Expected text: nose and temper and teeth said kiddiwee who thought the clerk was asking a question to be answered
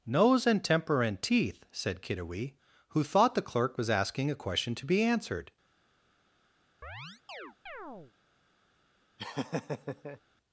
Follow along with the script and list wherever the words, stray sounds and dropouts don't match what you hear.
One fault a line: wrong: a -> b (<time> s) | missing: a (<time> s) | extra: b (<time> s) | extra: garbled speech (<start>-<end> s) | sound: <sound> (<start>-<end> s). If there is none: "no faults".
sound: chirp (6.8-8.1 s)
sound: laugh (9.2-10.2 s)